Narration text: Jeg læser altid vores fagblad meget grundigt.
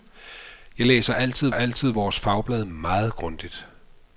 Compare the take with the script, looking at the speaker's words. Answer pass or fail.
fail